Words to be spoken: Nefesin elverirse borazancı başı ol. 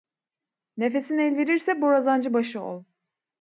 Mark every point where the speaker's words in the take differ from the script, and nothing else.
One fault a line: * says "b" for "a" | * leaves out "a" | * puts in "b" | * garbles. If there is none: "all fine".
all fine